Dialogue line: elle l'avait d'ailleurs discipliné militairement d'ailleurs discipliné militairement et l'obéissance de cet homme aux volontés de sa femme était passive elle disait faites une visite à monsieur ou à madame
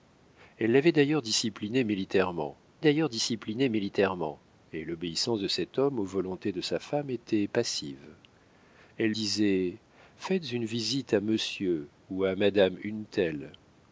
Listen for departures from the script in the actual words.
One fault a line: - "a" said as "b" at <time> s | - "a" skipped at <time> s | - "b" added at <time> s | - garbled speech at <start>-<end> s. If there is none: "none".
none